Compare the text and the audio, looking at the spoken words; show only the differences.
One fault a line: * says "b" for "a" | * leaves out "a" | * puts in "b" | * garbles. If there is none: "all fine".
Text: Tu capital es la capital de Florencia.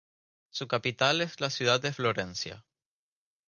* says "Su" for "Tu"
* says "ciudad" for "capital"